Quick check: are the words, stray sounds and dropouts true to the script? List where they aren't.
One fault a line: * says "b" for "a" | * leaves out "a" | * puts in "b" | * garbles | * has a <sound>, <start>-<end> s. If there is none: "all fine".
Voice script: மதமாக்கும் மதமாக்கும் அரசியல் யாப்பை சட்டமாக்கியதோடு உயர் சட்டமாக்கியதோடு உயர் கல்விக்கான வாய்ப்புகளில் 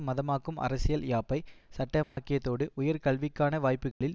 * leaves out "மதமாக்கும்"
* has a dropout, 2.0-2.2 s
* leaves out "சட்டமாக்கியதோடு உயர்"
* has a dropout, 3.9-4.0 s